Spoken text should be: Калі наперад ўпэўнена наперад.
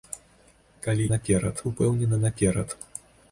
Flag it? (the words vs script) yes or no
no